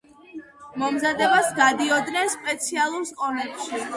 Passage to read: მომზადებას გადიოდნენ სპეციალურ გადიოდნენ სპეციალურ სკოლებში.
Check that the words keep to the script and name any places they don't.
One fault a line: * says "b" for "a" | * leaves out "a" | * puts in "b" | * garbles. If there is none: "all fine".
* leaves out "გადიოდნენ სპეციალურ"